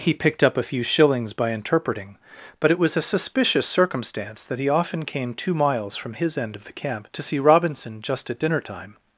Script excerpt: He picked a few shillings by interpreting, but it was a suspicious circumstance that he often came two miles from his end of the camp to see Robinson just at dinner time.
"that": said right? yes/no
yes